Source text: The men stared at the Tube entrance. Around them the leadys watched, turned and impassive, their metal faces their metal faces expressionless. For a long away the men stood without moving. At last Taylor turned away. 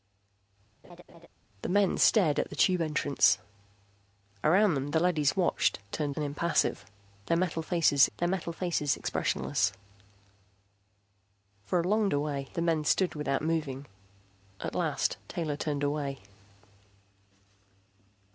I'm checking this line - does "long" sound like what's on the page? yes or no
yes